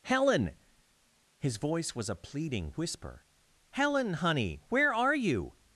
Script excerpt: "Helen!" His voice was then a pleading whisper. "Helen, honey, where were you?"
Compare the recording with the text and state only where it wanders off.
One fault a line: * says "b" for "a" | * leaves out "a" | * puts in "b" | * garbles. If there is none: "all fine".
* leaves out "then"
* says "are" for "were"